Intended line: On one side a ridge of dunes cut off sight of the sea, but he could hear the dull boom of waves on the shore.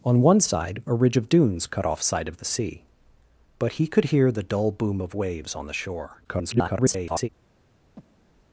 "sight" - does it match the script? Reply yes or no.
yes